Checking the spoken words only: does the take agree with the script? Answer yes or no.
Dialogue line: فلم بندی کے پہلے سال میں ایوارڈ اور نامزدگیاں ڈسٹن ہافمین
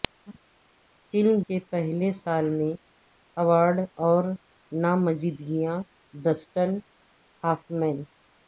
no